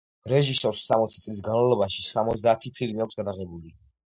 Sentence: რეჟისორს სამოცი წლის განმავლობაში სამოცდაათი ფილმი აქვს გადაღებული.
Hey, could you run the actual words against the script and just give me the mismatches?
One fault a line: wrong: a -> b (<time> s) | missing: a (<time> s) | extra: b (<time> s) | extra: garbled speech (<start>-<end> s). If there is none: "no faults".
no faults